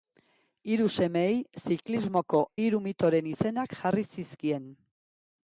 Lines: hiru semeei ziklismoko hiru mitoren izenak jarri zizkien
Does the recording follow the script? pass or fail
pass